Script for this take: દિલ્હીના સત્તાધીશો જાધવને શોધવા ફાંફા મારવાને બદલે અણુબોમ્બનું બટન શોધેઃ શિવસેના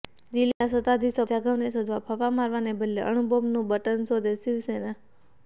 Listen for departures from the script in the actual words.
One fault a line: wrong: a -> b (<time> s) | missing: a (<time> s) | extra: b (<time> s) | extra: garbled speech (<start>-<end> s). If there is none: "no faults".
no faults